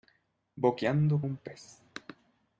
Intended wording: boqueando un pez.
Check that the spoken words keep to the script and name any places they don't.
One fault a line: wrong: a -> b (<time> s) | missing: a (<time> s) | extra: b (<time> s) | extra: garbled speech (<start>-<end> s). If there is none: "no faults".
no faults